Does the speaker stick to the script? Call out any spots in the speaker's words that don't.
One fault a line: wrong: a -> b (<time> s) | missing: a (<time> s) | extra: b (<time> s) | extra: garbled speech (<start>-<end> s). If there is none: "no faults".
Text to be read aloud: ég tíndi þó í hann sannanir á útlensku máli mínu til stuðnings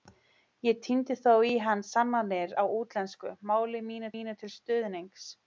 extra: mínu (4.1 s)